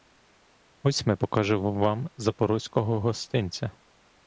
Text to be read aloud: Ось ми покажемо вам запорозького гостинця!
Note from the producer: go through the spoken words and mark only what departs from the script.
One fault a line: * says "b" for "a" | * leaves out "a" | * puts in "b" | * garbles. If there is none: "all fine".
all fine